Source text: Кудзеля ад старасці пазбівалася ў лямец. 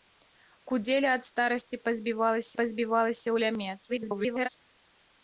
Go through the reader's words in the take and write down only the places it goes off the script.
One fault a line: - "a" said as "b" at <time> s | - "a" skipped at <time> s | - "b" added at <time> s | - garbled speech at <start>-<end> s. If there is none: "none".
- "пазбівалася" added at 2.6 s
- garbled speech at 3.9-4.5 s